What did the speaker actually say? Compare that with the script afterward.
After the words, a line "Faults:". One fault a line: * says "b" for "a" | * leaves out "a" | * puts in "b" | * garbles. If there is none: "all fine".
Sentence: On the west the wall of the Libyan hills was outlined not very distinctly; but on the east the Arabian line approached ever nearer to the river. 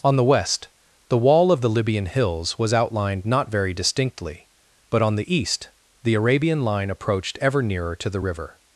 On the west the wall of the Libyan hills was outlined not very distinctly; but on the east the Arabian line approached ever nearer to the river.
Faults:
all fine